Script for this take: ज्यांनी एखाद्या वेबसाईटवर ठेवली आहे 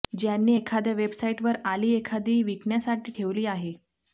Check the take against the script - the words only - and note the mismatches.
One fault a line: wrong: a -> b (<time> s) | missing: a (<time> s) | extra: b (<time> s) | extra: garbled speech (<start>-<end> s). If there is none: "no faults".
extra: आली एखादी विकण्यासाठी (1.7 s)